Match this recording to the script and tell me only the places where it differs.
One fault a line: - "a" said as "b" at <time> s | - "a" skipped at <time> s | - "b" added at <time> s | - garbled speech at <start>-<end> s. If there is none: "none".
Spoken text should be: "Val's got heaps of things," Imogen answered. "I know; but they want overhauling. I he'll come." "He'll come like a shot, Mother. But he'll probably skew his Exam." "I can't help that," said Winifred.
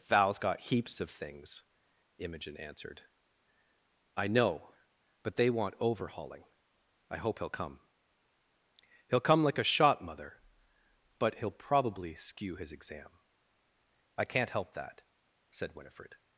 - "hope" added at 7.2 s